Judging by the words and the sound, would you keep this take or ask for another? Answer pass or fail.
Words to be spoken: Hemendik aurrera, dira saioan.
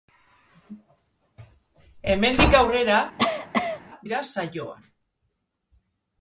fail